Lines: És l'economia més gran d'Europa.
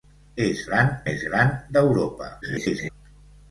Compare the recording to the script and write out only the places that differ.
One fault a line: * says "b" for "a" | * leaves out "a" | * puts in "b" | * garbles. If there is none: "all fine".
* says "gran" for "l'economia"
* garbles